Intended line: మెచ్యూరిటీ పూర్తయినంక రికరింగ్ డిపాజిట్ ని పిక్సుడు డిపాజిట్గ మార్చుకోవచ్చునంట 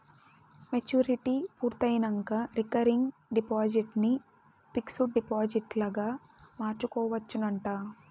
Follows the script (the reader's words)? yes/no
yes